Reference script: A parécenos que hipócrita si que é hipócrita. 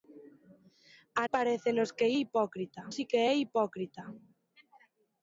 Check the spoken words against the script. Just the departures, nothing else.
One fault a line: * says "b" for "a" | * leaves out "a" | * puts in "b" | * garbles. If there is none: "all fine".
all fine